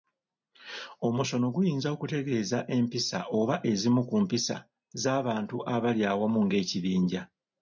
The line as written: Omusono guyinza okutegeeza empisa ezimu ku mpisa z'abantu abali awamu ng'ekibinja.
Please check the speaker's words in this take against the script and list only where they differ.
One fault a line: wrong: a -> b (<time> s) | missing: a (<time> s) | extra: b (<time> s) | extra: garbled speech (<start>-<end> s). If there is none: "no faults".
extra: oba (3.4 s)